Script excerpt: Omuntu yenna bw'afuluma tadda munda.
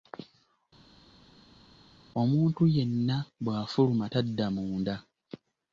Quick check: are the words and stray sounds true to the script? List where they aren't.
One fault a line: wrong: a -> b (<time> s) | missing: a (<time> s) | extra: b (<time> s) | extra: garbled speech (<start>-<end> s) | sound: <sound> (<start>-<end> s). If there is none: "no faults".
no faults